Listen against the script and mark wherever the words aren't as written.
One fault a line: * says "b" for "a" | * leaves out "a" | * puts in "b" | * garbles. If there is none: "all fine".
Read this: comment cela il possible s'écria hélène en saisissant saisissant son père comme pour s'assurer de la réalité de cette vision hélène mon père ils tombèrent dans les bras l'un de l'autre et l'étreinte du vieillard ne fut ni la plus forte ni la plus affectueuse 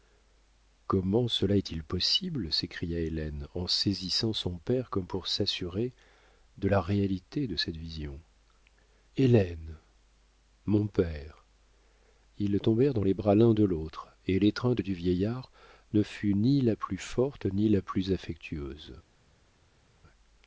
* puts in "est"
* leaves out "saisissant"